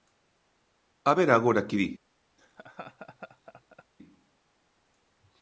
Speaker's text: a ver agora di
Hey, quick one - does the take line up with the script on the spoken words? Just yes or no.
no